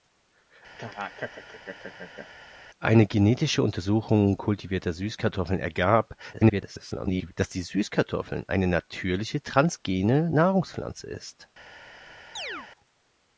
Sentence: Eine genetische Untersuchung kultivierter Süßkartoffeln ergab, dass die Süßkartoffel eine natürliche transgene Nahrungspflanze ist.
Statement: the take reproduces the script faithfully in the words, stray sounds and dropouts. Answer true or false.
false